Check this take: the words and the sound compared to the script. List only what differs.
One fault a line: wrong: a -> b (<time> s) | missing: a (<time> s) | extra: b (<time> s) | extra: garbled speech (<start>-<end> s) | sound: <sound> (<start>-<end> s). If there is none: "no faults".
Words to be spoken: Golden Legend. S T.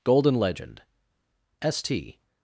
no faults